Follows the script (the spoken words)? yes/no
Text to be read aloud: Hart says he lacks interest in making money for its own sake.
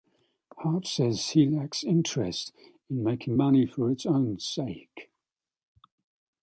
yes